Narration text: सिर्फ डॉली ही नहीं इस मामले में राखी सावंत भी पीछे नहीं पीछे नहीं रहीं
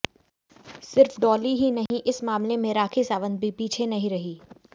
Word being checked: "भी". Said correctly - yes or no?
yes